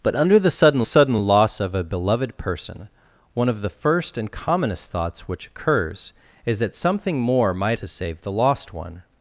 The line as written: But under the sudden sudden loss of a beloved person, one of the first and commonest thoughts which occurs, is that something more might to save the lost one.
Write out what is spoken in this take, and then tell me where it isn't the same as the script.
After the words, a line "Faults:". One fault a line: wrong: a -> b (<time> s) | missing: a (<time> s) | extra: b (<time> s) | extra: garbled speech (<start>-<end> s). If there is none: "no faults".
But under the sudden sudden loss of a beloved person, one of the first and commonest thoughts which occurs, is that something more might to save the lost one.
Faults:
no faults